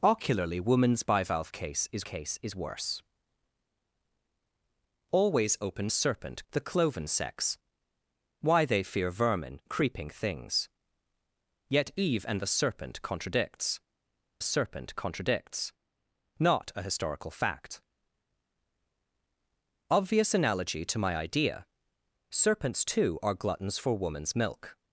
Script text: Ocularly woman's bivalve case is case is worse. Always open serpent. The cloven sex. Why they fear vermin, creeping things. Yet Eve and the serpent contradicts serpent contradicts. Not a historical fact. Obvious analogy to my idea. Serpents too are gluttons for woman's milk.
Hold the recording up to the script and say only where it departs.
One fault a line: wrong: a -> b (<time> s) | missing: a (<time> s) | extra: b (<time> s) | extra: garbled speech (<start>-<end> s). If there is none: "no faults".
no faults